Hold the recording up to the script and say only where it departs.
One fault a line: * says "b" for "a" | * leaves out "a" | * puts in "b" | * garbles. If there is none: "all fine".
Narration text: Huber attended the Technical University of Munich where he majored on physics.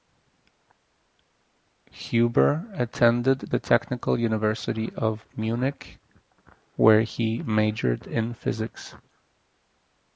* says "in" for "on"